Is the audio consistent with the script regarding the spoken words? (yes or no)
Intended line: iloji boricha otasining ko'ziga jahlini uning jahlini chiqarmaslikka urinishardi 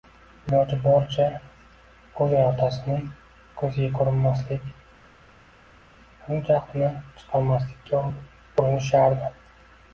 no